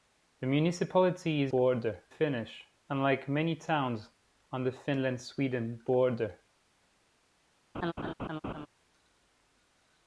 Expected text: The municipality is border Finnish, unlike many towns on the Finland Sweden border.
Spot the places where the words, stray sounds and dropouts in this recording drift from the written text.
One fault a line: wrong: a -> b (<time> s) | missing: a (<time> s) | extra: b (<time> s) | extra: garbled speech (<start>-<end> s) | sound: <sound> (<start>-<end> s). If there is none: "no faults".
sound: laugh (7.7-8.7 s)